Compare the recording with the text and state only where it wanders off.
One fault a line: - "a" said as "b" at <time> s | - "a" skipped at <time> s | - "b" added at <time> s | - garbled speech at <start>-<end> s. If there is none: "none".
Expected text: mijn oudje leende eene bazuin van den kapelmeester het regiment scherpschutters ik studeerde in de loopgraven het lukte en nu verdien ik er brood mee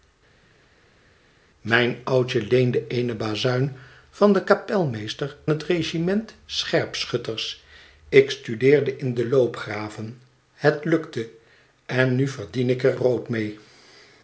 none